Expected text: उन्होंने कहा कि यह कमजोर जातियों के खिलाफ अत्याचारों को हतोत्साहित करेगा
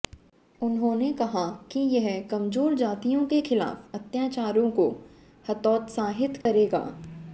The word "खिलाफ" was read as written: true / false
true